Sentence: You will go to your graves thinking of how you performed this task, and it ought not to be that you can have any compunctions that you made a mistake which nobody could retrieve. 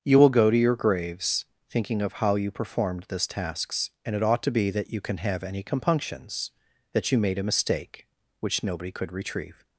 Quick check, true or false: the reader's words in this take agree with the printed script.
false